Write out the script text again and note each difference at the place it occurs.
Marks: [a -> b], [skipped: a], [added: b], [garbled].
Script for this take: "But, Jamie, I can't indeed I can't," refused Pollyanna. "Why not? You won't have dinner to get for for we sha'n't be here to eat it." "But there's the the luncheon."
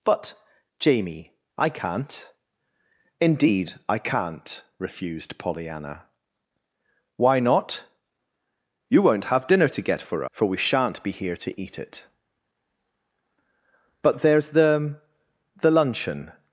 "But, Jamie, I can't indeed I can't," refused Pollyanna. "Why not? You won't have dinner to get for for we sha'n't be here to eat it." "But there's the the luncheon."